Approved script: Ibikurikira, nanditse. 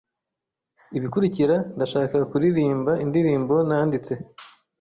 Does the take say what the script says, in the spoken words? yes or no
no